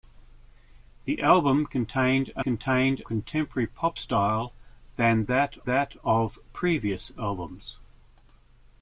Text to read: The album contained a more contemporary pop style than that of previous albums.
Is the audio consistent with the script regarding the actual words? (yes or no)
no